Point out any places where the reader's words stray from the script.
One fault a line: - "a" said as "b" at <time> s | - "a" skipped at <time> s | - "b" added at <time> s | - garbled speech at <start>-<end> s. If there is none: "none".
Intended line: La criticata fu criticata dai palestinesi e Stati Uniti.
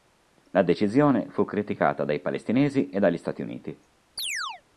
- "criticata" said as "decisione" at 0.6 s
- "dagli" added at 3.0 s